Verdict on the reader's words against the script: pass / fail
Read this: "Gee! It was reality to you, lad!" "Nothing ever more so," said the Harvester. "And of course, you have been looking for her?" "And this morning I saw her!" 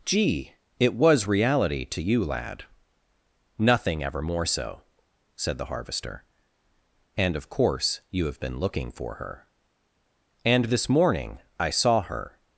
pass